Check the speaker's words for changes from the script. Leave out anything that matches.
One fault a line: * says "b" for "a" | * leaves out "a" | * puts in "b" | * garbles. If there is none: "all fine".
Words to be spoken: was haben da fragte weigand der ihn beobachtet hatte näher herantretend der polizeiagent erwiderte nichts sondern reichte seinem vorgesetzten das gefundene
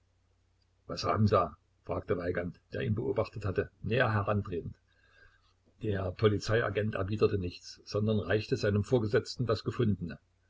all fine